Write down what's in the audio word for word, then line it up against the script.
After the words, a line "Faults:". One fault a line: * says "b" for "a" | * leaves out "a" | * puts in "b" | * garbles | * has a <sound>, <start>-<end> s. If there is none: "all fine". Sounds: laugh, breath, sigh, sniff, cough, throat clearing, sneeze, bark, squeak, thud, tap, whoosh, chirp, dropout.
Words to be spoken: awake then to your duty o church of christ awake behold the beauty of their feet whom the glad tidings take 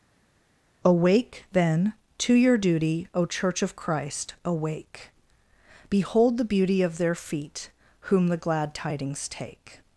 awake then to your duty o church of christ awake behold the beauty of their feet whom the glad tidings take
Faults:
all fine